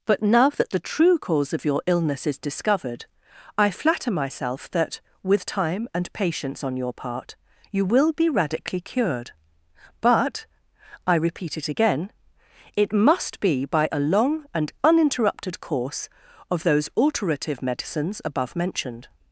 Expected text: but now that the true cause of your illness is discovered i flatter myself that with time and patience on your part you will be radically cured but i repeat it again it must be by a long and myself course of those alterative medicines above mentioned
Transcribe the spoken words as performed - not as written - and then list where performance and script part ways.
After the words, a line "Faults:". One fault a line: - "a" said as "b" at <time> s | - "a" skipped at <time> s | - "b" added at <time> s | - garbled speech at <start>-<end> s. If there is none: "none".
but now that the true cause of your illness is discovered i flatter myself that with time and patience on your part you will be radically cured but i repeat it again it must be by a long and uninterrupted course of those alterative medicines above mentioned
Faults:
- "myself" said as "uninterrupted" at 14.8 s